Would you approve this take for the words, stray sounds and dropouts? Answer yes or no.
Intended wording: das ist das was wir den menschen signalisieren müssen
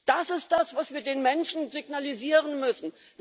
yes